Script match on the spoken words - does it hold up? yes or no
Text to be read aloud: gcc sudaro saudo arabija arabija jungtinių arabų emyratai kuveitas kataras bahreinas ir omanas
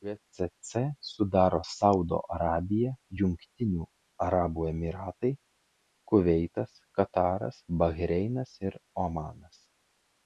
no